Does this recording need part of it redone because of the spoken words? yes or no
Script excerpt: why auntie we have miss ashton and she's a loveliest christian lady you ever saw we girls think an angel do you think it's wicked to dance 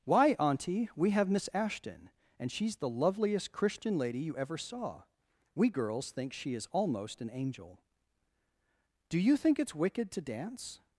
yes